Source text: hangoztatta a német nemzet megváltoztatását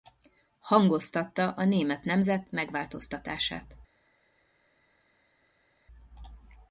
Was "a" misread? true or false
false